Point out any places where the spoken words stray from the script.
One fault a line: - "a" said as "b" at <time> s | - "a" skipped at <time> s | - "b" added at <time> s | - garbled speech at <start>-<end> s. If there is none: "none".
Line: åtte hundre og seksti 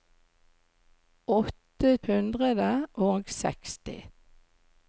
none